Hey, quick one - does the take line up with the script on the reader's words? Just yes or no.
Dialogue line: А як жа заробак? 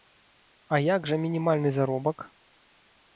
no